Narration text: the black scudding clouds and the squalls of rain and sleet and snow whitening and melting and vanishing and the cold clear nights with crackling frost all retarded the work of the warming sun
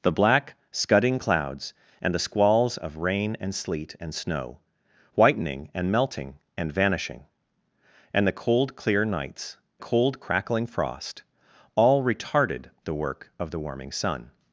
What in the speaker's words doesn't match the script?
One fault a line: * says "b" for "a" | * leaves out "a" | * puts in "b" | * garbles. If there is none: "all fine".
* says "cold" for "with"